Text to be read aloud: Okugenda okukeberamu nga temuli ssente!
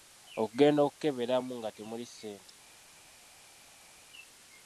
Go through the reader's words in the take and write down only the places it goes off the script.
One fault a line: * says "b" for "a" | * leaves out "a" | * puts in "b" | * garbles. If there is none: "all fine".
all fine